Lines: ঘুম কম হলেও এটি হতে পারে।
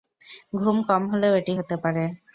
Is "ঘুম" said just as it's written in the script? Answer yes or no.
yes